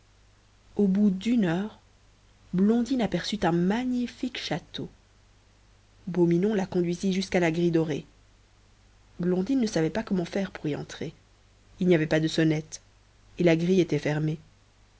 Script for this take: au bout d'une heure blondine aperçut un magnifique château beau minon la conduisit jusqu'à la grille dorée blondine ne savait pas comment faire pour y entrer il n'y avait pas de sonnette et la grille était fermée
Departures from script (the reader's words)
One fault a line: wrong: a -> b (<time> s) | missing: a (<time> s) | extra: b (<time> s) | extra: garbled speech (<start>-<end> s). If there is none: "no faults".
no faults